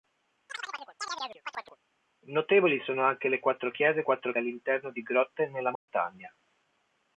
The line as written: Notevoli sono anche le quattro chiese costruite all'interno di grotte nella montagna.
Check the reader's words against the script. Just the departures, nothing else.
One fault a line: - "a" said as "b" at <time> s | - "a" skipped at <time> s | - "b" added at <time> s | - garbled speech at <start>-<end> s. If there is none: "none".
- "costruite" said as "quattro" at 4.0 s